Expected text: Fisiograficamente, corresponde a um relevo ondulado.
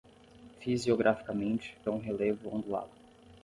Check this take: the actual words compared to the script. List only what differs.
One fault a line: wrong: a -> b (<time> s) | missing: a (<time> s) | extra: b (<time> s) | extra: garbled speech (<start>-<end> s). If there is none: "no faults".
missing: corresponde (1.8 s)